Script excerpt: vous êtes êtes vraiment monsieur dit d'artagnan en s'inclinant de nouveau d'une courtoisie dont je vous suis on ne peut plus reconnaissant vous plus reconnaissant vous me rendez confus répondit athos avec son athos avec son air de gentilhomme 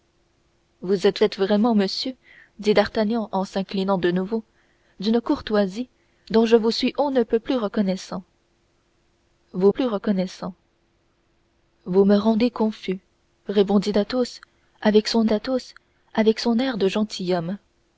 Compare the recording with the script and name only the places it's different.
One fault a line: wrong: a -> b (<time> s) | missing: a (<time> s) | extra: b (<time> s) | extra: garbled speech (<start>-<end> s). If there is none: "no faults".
no faults